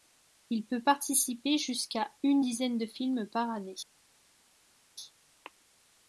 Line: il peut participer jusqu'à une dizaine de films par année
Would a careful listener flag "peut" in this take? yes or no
no